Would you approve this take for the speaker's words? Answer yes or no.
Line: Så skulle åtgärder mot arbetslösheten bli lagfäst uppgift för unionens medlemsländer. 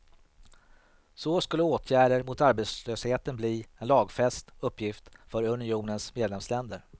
no